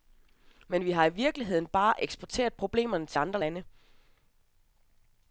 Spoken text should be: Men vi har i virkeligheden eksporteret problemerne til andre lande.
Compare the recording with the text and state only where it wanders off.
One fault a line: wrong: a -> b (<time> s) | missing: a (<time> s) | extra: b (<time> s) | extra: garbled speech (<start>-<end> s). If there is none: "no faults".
extra: bare (1.7 s)